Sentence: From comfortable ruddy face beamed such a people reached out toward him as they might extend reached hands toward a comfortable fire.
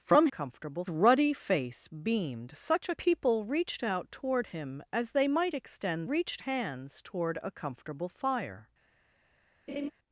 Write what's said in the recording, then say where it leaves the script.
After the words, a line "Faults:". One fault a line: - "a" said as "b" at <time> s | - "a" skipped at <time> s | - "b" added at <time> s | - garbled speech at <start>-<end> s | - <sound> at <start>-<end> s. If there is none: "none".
From comfortable ruddy face beamed such a people reached out toward him as they might extend reached hands toward a comfortable fire.
Faults:
- laugh at 9.7-9.9 s